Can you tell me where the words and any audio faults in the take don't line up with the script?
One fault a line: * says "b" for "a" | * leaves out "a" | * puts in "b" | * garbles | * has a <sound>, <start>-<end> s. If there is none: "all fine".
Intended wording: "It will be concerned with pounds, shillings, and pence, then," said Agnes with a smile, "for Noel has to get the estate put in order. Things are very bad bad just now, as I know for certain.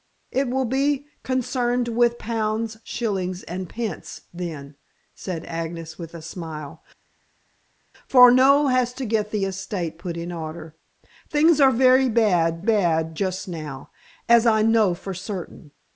all fine